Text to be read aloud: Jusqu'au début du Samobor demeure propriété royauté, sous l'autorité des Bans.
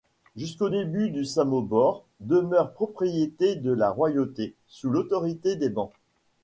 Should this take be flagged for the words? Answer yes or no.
yes